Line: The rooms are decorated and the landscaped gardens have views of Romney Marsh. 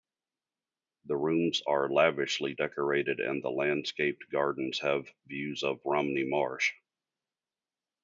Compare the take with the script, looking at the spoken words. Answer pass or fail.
fail